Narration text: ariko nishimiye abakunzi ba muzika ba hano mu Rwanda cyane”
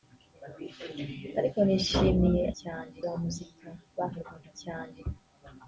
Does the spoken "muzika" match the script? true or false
true